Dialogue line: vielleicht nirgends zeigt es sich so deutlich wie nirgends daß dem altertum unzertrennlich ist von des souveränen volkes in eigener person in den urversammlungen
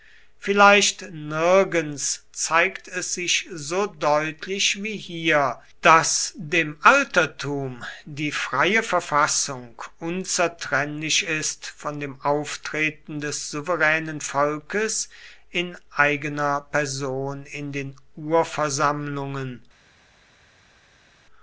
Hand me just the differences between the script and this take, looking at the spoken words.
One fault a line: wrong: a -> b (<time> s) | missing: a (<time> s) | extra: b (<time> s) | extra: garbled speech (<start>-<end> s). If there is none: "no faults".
wrong: nirgends -> hier (5.0 s)
extra: die freie verfassung (8.1 s)
extra: dem auftreten (12.0 s)